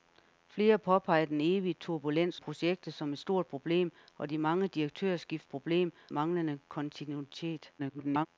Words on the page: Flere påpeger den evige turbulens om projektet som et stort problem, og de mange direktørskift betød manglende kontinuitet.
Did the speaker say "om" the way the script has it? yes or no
no